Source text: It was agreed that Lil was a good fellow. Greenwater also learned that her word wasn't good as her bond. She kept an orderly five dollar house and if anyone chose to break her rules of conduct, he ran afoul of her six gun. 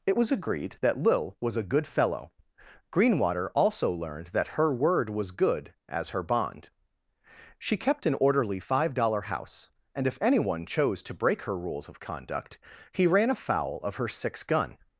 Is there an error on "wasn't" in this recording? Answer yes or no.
yes